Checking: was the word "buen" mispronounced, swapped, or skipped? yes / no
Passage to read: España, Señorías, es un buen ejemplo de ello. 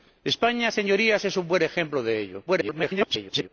no